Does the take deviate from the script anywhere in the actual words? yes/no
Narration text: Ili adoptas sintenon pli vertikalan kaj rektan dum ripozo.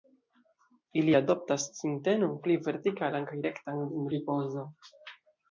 no